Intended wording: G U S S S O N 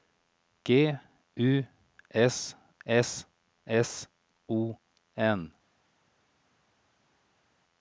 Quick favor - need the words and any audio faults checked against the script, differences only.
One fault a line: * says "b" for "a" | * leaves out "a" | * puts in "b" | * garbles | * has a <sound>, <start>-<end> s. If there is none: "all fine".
all fine